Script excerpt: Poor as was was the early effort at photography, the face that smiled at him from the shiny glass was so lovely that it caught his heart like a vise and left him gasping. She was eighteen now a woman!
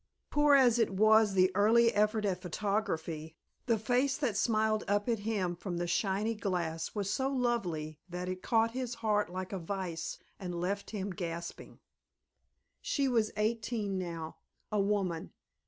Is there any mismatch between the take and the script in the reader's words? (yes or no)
yes